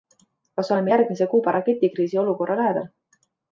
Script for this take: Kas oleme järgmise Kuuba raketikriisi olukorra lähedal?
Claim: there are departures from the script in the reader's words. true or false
false